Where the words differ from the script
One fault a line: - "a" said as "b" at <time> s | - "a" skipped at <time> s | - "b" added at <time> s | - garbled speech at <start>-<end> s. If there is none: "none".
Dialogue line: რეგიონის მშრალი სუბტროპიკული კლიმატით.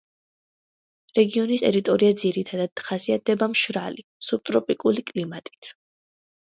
- "ტერიტორია ძირითადად ხასიათდება" added at 1.6 s